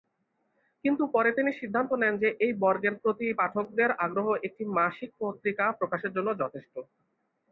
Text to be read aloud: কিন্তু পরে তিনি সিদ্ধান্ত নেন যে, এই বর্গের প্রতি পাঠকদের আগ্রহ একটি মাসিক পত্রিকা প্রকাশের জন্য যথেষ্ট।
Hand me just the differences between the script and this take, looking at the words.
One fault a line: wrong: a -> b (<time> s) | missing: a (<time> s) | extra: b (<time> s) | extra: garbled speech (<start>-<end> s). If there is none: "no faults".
no faults